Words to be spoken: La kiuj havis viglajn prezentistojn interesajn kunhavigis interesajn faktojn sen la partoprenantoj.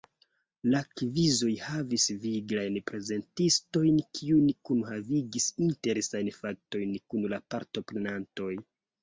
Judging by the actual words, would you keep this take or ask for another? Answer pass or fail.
fail